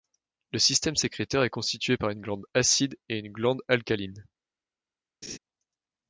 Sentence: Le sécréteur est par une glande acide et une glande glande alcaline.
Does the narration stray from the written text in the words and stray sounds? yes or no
yes